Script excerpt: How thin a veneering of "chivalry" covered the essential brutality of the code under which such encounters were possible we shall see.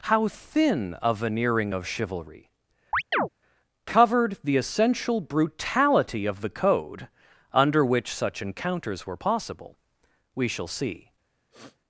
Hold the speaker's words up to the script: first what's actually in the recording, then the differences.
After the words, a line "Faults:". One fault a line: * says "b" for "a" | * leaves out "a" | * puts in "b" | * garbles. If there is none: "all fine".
How thin a veneering of "chivalry" covered the essential brutality of the code under which such encounters were possible we shall see.
Faults:
all fine